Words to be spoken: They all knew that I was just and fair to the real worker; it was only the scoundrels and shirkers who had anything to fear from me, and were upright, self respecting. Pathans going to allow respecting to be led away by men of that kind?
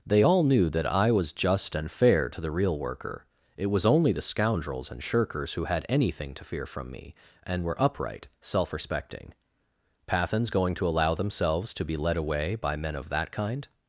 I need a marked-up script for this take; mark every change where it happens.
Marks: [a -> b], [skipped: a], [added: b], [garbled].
They all knew that I was just and fair to the real worker; it was only the scoundrels and shirkers who had anything to fear from me, and were upright, self respecting. Pathans going to allow [respecting -> themselves] to be led away by men of that kind?